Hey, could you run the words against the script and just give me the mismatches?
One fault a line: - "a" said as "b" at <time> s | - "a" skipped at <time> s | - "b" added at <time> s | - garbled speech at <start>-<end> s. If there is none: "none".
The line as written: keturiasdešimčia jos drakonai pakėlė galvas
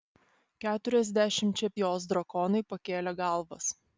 none